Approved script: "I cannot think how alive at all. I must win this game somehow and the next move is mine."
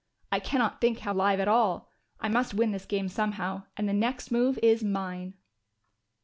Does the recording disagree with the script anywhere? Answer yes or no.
no